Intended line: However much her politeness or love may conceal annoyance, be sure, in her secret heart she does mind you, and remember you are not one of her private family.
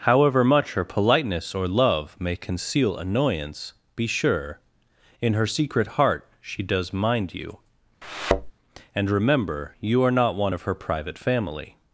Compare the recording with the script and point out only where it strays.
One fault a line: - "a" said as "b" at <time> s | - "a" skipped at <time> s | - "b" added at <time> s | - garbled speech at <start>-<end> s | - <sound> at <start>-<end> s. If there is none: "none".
- thud at 8.0-8.5 s